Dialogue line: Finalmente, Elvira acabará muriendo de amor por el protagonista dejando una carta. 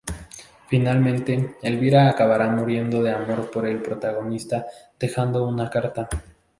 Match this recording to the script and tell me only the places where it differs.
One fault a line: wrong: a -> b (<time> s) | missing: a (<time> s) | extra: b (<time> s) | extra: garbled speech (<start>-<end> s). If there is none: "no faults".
no faults